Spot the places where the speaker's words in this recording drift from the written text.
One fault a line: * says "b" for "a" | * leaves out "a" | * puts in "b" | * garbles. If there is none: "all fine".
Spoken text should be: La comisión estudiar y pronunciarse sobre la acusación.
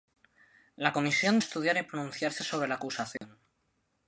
all fine